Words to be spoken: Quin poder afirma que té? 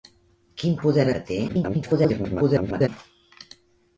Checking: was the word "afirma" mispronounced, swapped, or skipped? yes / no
yes